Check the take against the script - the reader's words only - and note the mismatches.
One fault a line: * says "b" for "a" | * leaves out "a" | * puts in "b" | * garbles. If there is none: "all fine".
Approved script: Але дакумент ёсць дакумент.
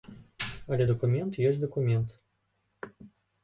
all fine